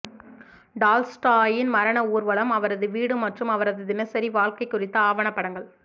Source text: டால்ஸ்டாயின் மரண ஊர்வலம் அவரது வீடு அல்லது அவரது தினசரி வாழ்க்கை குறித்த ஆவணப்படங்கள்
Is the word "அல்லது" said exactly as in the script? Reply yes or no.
no